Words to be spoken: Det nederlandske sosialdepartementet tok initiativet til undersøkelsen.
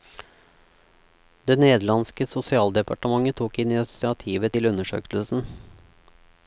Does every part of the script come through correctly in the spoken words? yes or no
yes